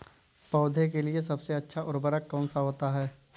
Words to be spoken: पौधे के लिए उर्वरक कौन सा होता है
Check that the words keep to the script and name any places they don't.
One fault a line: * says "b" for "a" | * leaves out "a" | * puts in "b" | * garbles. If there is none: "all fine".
* puts in "सबसे अच्छा"